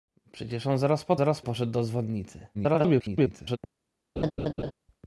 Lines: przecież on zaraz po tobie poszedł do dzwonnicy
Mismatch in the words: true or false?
true